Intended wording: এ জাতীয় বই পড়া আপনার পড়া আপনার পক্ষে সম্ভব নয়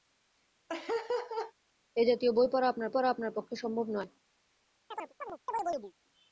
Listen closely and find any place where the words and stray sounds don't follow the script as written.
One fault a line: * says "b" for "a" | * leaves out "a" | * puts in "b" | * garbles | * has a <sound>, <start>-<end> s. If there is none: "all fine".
* has a laugh, 0.7-1.5 s
* has a chirp, 4.9-5.9 s